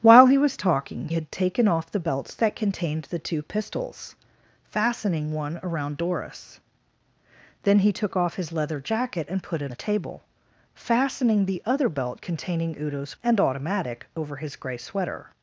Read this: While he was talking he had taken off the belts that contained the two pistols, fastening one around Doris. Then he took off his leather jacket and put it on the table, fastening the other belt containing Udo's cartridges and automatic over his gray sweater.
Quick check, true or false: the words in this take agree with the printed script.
false